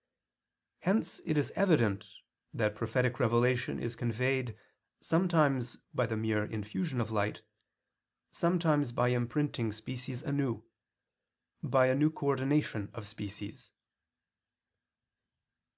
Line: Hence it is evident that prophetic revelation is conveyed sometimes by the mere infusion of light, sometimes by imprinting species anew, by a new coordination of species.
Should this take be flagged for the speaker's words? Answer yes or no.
no